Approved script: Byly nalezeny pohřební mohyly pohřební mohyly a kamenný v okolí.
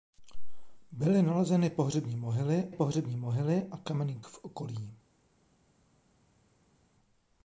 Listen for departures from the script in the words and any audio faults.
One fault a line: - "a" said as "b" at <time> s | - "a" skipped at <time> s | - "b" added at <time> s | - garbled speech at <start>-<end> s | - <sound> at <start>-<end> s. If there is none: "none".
none